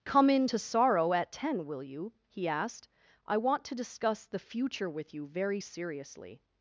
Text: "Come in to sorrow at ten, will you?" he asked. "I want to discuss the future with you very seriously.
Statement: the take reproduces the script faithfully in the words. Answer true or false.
true